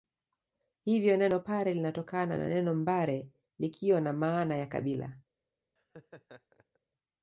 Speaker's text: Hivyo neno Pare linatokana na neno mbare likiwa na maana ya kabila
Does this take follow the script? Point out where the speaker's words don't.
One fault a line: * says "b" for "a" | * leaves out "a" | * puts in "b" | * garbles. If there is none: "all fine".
all fine